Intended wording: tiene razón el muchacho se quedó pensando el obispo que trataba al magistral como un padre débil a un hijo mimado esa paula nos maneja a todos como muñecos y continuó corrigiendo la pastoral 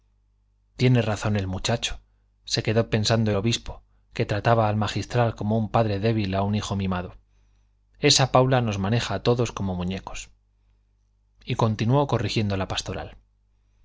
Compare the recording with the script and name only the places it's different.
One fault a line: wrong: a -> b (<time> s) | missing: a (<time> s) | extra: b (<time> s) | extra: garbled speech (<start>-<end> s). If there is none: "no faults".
missing: el (3.3 s)